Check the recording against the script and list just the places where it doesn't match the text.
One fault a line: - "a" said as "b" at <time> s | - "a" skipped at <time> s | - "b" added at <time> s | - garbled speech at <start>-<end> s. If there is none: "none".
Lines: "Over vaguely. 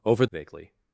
none